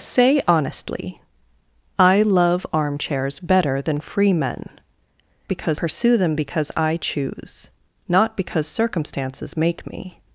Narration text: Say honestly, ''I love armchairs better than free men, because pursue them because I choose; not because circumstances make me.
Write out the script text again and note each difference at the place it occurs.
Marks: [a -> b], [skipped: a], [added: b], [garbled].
Say honestly, ''I love armchairs better than free men, because pursue them because I choose; not because circumstances make me.